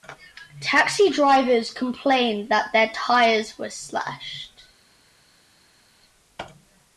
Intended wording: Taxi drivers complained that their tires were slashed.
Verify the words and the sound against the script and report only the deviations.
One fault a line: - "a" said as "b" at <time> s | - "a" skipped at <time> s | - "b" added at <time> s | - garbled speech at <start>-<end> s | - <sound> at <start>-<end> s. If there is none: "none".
none